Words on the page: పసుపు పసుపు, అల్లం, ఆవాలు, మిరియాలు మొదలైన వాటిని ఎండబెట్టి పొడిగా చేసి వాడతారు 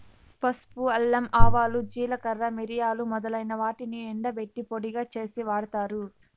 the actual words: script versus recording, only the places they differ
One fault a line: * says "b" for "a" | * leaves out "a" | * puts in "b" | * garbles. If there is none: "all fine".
* leaves out "పసుపు"
* puts in "జీలకర్ర"